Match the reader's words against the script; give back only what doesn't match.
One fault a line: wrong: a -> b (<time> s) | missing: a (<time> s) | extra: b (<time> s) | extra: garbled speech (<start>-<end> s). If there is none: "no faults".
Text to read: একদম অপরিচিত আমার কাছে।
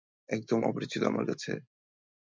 no faults